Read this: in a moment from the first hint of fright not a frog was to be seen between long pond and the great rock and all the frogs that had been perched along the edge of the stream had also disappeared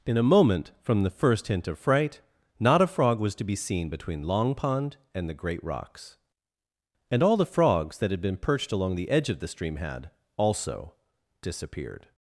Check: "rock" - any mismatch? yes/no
yes